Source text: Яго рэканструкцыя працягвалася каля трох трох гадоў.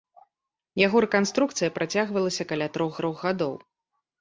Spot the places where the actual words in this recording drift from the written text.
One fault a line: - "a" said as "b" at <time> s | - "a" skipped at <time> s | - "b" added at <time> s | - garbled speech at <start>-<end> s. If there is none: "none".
none